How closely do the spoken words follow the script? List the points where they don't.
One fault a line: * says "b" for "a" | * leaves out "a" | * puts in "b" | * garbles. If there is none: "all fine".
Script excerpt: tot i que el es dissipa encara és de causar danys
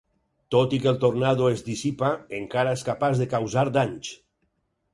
* puts in "tornado"
* puts in "capaç"